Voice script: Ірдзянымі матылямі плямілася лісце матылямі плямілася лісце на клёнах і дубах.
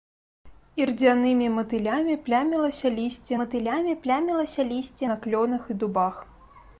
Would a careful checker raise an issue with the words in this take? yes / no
no